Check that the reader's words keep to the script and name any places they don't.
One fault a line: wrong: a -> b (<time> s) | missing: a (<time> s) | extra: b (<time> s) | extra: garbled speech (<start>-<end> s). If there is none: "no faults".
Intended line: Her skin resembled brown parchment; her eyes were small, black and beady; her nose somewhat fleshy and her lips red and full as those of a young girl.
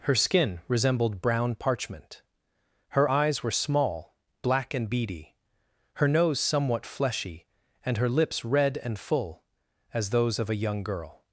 no faults